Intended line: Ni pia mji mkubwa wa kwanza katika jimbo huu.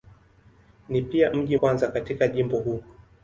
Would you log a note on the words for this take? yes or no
yes